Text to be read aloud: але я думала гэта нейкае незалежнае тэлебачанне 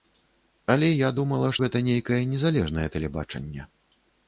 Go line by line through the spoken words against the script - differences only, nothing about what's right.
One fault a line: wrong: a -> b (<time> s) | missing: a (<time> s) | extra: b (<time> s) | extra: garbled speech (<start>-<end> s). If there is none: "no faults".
no faults